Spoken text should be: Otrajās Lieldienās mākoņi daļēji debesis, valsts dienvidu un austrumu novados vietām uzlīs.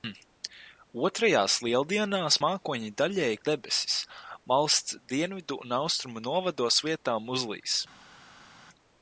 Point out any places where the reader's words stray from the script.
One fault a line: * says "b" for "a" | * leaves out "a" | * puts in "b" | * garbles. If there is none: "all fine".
all fine